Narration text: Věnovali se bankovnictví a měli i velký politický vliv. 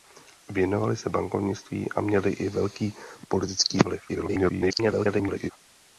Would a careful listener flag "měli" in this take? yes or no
no